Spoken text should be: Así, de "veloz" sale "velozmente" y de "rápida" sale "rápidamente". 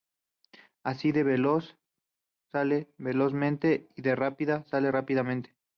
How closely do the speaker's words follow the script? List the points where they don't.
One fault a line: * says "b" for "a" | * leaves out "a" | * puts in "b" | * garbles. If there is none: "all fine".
all fine